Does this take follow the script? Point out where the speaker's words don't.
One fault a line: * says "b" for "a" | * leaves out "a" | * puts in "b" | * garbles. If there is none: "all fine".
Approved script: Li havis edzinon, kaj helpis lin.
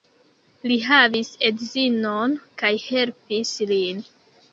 all fine